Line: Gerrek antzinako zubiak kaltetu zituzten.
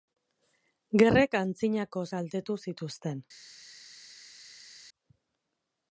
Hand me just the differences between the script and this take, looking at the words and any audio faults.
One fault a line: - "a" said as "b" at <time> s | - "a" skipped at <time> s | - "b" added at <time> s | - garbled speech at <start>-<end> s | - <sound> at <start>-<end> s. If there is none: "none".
- "zubiak" skipped at 2.0 s